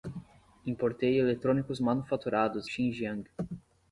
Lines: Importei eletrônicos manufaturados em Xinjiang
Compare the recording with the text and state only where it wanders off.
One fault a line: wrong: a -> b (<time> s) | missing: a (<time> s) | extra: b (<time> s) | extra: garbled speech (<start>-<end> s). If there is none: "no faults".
missing: em (2.7 s)